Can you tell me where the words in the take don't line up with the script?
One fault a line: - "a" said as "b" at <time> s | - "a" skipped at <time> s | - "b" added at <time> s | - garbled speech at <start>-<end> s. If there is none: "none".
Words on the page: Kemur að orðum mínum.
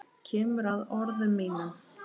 none